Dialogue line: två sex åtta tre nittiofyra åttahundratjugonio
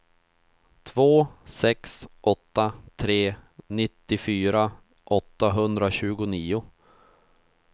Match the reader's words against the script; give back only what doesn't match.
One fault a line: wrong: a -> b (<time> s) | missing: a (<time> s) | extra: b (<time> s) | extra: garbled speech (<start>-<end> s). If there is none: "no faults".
no faults